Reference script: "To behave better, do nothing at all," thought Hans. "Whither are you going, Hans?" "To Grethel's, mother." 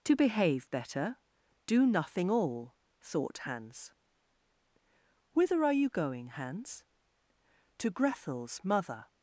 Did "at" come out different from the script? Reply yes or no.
yes